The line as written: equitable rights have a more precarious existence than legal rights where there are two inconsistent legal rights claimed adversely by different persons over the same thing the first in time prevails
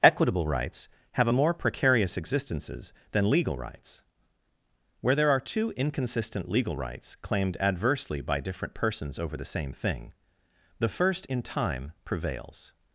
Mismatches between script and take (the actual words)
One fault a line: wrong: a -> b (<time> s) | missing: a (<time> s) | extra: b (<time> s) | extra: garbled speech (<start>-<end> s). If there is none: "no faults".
wrong: existence -> existences (2.2 s)